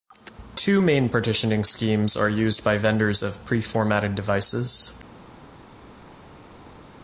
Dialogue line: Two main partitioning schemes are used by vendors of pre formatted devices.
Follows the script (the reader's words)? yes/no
yes